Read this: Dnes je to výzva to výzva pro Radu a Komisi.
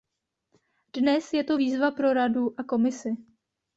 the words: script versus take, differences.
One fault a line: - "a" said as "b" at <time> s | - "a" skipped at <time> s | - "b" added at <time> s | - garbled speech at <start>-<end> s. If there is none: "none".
- "to výzva" skipped at 1.9 s